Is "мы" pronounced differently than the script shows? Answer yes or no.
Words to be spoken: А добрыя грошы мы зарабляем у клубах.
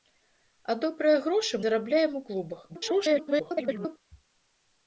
yes